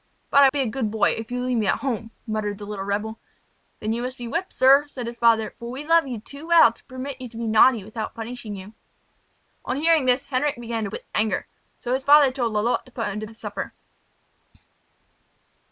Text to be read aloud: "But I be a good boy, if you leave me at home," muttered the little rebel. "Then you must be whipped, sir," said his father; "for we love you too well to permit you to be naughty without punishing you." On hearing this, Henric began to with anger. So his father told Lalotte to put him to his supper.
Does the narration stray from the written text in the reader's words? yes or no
no